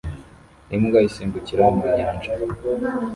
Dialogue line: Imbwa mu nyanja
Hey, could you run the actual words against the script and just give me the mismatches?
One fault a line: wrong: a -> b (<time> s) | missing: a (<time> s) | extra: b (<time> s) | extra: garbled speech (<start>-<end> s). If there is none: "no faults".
extra: isimbukira (1.1 s)